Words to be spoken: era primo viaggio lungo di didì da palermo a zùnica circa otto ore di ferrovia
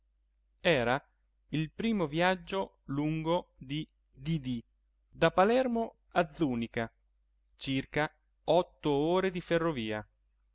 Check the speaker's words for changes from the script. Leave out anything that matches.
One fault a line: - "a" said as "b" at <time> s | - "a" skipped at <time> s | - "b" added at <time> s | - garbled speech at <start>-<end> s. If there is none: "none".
- "il" added at 1.5 s